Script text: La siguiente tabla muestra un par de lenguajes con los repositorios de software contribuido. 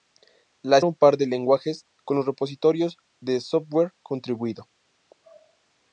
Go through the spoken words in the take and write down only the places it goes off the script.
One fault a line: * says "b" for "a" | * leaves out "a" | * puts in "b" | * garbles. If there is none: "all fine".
* leaves out "siguiente tabla muestra"